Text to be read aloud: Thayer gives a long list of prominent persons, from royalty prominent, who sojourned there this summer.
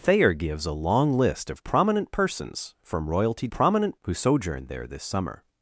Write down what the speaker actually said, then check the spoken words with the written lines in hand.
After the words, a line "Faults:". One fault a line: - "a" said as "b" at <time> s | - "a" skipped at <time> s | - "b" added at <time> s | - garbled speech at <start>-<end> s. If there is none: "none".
Thayer gives a long list of prominent persons, from royalty prominent, who sojourned there this summer.
Faults:
none